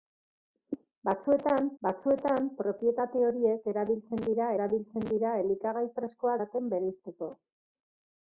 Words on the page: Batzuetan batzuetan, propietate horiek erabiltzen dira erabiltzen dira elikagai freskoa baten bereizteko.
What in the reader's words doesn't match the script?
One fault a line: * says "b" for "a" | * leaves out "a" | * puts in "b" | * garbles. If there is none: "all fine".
all fine